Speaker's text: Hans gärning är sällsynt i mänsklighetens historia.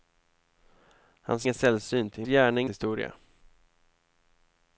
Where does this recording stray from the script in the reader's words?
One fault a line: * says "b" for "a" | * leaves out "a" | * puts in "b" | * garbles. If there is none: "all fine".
* leaves out "gärning"
* says "gärning" for "mänsklighetens"